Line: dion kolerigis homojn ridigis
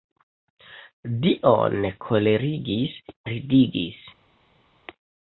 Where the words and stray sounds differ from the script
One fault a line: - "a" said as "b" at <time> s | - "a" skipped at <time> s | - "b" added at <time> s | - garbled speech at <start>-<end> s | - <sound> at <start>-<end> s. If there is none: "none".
- "homojn" skipped at 3.0 s